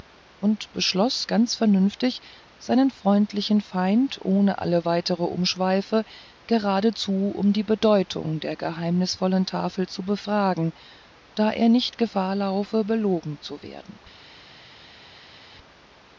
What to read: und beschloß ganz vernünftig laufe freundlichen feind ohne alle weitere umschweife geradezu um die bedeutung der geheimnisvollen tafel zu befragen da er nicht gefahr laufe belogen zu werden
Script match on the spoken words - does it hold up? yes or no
no